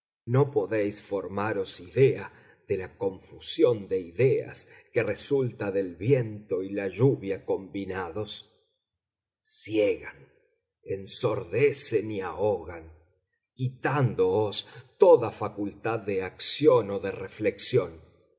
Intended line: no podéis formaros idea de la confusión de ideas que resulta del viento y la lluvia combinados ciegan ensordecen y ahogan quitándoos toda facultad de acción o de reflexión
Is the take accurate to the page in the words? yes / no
yes